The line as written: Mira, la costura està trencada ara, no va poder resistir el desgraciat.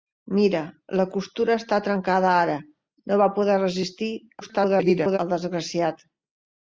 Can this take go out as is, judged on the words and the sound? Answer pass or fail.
fail